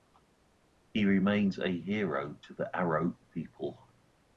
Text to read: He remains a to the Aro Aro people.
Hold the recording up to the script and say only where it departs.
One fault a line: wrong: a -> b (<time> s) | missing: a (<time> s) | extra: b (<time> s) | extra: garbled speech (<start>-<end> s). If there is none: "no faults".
extra: hero (1.7 s)
missing: Aro (3.2 s)